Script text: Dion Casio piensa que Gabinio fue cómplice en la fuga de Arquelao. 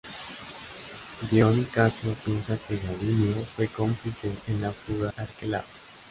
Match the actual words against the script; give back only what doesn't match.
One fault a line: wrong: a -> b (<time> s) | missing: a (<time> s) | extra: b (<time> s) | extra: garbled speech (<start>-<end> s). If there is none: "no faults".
missing: de (5.1 s)